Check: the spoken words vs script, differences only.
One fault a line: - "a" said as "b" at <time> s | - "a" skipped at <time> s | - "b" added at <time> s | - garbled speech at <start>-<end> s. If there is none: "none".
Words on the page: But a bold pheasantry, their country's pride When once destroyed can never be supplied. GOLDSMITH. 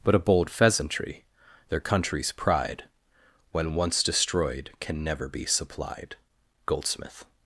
none